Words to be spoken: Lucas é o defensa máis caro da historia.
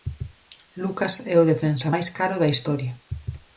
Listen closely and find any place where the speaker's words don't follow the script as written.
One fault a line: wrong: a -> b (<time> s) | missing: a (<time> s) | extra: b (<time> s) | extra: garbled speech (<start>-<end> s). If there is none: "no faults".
no faults